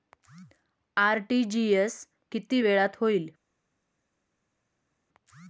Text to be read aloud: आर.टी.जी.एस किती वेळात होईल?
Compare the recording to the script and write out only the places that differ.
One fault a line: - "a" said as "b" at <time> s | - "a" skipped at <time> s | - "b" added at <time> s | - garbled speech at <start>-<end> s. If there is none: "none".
none